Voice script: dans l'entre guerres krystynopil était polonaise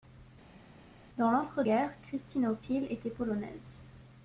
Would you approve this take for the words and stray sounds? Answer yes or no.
yes